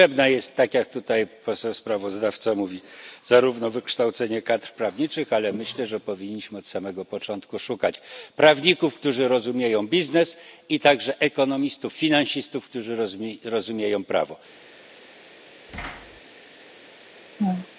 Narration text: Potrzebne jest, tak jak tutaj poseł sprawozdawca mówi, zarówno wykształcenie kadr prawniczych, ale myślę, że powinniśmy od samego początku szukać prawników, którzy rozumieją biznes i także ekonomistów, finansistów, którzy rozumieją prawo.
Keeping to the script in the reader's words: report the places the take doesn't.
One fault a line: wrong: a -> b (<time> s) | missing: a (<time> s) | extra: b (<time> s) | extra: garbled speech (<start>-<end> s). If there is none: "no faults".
no faults